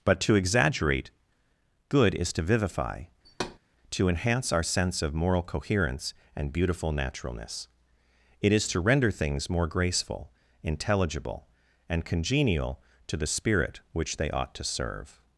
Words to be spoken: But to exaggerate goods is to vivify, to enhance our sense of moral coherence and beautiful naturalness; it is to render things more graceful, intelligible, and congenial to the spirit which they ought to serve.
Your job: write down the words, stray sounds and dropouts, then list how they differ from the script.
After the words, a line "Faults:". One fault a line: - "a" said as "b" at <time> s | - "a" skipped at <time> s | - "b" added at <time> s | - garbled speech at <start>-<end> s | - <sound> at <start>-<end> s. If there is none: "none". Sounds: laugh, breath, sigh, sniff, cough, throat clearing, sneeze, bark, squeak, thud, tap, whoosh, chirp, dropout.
But to exaggerate good is to vivify, to enhance our sense of moral coherence and beautiful naturalness; it is to render things more graceful, intelligible, and congenial to the spirit which they ought to serve.
Faults:
- "goods" said as "good" at 1.9 s
- thud at 3.2-3.6 s